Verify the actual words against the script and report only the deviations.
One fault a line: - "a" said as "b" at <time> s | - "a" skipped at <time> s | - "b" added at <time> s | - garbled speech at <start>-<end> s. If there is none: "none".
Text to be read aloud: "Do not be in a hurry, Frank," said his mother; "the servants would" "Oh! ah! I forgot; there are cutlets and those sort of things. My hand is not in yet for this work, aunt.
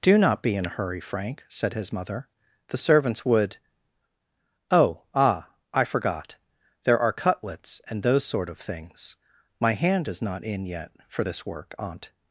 none